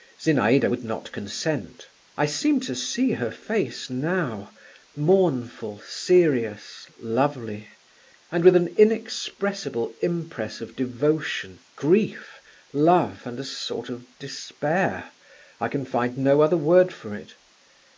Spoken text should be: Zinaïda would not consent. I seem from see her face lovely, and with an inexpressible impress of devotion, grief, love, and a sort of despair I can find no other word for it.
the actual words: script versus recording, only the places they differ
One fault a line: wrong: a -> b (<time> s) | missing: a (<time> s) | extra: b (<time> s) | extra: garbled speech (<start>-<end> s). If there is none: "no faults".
wrong: from -> to (2.6 s)
extra: now mournful serious (3.9 s)